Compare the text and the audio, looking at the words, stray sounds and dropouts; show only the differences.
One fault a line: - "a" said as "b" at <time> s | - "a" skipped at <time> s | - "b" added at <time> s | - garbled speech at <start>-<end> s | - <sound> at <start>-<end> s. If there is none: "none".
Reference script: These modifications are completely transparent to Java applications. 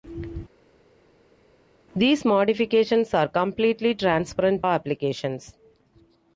- "to Java" skipped at 4.6 s